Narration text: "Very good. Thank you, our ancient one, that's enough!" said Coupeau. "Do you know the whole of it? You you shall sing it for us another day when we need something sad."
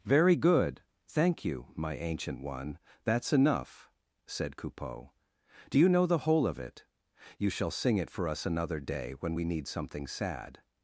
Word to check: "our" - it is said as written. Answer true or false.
false